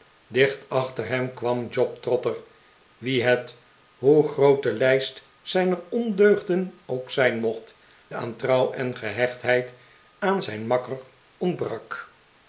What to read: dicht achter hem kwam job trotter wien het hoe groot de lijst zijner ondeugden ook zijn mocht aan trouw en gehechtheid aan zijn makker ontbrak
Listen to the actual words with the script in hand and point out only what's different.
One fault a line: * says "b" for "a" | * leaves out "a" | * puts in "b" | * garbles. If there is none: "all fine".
all fine